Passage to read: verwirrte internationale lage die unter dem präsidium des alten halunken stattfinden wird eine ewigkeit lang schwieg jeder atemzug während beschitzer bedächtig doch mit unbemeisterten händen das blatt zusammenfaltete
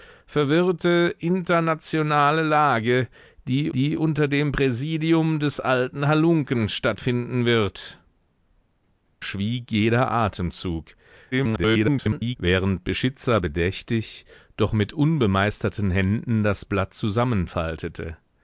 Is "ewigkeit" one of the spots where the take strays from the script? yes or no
yes